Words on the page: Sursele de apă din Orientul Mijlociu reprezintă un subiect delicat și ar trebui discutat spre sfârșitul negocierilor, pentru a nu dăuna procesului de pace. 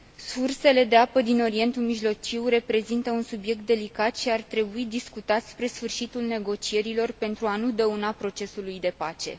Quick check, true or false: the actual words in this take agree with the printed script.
true